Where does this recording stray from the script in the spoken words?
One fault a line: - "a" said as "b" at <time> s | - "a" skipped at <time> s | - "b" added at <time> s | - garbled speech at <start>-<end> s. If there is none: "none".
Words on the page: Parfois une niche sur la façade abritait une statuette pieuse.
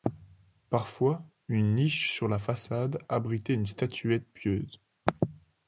none